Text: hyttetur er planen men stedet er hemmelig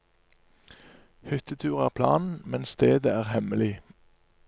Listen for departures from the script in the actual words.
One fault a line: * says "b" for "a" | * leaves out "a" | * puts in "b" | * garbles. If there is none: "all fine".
all fine